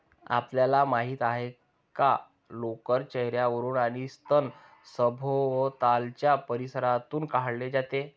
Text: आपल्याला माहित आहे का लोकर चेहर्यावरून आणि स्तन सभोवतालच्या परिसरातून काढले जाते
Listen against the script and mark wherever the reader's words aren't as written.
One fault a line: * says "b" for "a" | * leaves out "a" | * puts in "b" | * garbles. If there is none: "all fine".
all fine